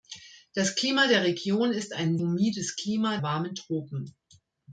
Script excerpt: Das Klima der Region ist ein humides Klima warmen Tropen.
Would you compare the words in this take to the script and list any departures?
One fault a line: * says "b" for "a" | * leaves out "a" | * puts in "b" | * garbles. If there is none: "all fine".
all fine